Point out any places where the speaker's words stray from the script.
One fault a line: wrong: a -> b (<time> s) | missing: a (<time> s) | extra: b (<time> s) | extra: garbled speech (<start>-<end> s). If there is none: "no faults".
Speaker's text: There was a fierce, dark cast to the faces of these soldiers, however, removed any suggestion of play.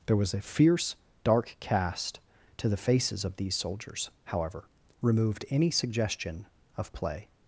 no faults